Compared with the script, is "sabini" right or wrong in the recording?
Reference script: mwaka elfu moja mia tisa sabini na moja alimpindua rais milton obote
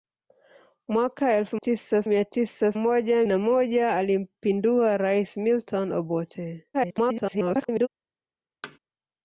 wrong